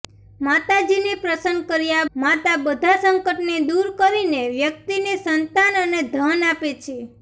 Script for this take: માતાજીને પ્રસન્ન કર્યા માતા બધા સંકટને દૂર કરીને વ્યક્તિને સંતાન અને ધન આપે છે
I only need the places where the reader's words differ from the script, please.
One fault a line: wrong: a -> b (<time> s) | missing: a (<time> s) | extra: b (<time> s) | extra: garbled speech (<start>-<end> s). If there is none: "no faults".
no faults